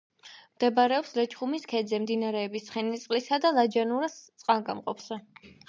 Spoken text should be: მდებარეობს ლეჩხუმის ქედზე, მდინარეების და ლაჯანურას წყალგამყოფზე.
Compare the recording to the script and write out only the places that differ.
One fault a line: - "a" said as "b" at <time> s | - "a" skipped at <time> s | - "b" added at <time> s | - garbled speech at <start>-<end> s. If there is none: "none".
- "ცხენისწყლისა" added at 2.7 s